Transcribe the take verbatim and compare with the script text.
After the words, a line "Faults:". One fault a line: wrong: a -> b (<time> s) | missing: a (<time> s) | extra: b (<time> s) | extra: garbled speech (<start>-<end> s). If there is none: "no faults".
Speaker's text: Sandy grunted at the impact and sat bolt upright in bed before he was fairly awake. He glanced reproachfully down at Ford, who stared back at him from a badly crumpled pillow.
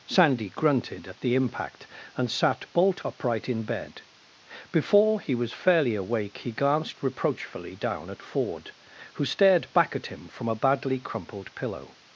Sandy grunted at the impact and sat bolt upright in bed before he was fairly awake. He glanced reproachfully down at Ford, who stared back at him from a badly crumpled pillow.
Faults:
no faults